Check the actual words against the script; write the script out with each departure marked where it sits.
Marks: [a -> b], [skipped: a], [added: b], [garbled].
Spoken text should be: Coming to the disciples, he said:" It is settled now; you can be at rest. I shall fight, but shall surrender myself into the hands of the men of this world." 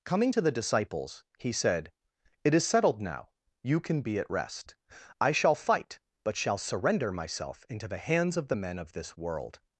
Coming to the disciples, he said:" It is settled now; you can be at rest. I shall fight, but shall surrender myself into the hands of the men of this world."